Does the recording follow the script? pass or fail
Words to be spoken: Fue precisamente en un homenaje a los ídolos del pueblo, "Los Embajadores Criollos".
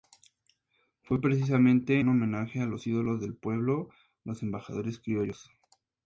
fail